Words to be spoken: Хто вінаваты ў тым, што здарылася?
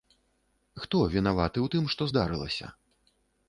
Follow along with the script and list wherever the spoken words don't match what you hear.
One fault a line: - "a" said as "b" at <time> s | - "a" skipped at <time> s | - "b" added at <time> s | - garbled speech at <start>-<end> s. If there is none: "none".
none